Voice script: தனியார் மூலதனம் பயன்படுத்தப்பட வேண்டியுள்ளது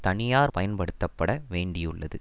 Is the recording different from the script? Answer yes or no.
yes